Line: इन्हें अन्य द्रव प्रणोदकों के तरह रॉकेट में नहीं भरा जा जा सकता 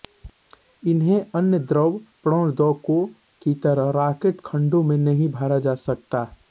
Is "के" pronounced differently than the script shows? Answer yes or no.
yes